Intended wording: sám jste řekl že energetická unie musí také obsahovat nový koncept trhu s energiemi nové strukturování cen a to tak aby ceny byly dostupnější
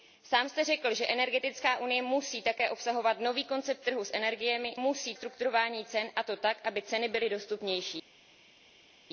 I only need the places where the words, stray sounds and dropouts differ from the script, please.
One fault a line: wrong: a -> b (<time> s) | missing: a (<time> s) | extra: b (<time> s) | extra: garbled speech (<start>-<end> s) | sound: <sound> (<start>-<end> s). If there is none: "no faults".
wrong: nové -> musí (4.7 s)